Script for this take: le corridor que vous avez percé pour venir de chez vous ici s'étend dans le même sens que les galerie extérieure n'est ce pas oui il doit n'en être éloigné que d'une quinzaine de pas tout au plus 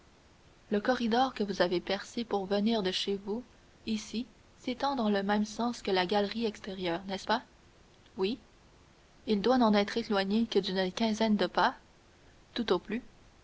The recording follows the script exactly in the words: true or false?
false